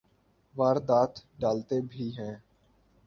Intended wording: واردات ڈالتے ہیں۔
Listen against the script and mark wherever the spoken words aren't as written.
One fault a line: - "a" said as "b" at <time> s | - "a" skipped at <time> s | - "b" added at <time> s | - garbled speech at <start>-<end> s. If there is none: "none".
- "بھی" added at 1.9 s